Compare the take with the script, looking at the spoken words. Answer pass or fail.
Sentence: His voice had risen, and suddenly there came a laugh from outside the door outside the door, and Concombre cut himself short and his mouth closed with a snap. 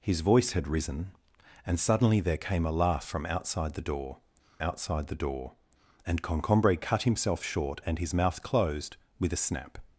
pass